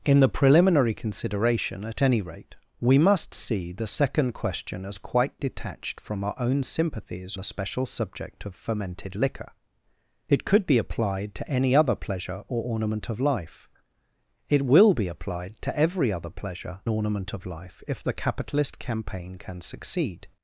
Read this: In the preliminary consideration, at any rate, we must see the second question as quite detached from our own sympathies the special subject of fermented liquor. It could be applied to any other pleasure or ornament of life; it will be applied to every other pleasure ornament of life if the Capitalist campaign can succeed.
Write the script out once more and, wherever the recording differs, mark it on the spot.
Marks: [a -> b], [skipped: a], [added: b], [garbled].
In the preliminary consideration, at any rate, we must see the second question as quite detached from our own sympathies the special subject of fermented liquor. It could be applied to any other pleasure or ornament of life; it will be applied to every other pleasure ornament of life if the Capitalist campaign can succeed.